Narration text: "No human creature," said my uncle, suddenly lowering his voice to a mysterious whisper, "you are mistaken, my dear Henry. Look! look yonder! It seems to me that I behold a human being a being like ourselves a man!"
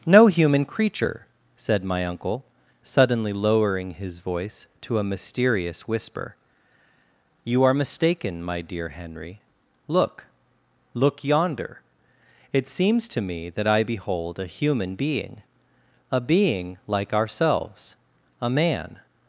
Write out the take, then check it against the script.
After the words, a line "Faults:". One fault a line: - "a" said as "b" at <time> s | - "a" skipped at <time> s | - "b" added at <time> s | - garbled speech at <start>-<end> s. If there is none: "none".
"No human creature," said my uncle, suddenly lowering his voice to a mysterious whisper, "you are mistaken, my dear Henry. Look! look yonder! It seems to me that I behold a human being a being like ourselves a man!"
Faults:
none